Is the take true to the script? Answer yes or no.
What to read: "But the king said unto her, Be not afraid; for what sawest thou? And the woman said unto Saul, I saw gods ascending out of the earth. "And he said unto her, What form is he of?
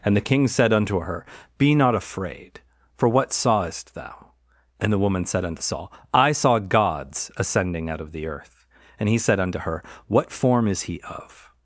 no